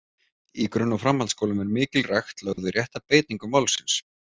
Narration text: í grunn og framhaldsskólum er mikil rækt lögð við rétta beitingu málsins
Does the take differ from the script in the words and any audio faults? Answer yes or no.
yes